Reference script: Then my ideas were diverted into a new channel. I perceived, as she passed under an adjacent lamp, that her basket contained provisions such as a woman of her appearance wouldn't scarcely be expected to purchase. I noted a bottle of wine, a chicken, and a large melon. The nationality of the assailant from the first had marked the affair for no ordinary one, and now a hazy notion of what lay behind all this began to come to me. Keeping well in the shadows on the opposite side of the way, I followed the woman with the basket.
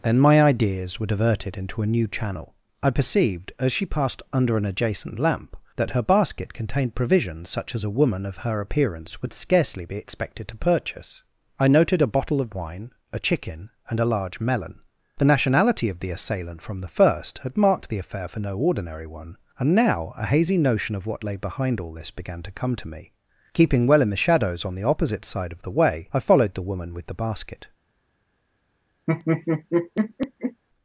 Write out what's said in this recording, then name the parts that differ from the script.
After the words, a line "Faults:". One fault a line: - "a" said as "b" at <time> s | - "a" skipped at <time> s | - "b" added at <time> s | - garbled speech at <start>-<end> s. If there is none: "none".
Then my ideas were diverted into a new channel. I perceived, as she passed under an adjacent lamp, that her basket contained provisions such as a woman of her appearance would scarcely be expected to purchase. I noted a bottle of wine, a chicken, and a large melon. The nationality of the assailant from the first had marked the affair for no ordinary one, and now a hazy notion of what lay behind all this began to come to me. Keeping well in the shadows on the opposite side of the way, I followed the woman with the basket.
Faults:
- "wouldn't" said as "would" at 9.2 s